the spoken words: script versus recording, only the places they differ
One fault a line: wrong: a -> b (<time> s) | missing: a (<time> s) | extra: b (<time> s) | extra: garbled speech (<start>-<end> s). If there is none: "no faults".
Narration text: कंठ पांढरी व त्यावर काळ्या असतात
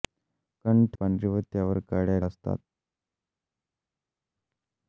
no faults